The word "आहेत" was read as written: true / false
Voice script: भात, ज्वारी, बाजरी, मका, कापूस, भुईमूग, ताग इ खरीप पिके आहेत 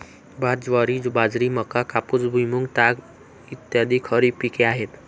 true